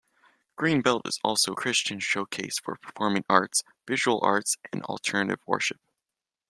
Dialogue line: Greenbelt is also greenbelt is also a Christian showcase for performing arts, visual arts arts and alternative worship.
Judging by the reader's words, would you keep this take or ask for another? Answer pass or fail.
fail